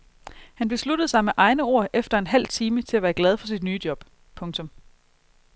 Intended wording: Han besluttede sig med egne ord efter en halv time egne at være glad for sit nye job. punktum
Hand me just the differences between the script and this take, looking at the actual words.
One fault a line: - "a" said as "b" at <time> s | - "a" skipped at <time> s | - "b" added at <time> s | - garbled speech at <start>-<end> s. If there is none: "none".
- "egne" said as "til" at 2.8 s